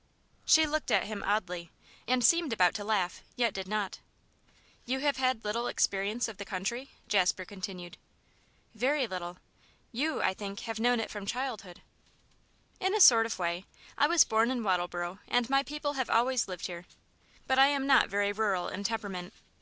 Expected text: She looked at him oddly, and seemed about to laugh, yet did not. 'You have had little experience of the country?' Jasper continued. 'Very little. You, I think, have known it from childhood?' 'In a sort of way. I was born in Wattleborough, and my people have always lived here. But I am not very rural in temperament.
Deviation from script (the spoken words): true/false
false